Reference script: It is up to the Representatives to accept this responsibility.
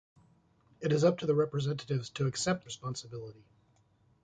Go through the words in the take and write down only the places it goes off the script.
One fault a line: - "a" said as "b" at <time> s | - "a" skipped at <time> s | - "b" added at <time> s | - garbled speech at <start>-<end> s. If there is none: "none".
- "this" skipped at 2.7 s